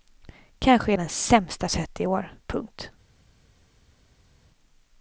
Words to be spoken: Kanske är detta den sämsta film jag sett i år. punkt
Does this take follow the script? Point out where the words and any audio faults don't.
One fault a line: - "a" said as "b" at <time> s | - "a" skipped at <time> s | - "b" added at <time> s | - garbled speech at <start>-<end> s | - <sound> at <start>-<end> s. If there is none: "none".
- "detta" skipped at 1.0 s
- "film jag" skipped at 1.7 s